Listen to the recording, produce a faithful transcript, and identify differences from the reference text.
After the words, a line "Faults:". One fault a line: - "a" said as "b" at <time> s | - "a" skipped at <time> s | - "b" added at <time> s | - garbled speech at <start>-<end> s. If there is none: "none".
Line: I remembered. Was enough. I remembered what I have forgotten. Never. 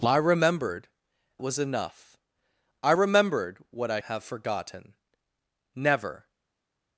I remembered. Was enough. I remembered what I have forgotten. Never.
Faults:
none